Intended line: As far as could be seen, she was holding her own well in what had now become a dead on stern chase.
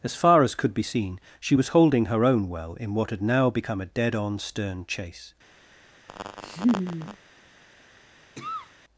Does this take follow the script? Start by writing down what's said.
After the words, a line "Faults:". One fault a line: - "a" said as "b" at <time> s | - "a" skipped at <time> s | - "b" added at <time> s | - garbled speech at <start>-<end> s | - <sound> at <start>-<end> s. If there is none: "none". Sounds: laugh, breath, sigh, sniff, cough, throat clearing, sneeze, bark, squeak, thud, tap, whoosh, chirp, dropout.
As far as could be seen, she was holding her own well in what had now become a dead on stern chase.
Faults:
- laugh at 6.1-7.2 s
- cough at 8.4-8.7 s